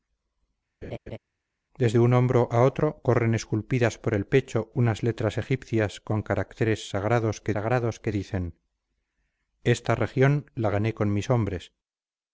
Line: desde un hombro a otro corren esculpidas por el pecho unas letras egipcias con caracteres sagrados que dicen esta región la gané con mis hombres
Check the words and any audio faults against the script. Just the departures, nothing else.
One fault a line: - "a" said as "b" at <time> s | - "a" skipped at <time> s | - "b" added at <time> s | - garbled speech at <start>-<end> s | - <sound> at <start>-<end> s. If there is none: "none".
- laugh at 0.8-1.2 s
- "sagrados que" added at 7.5 s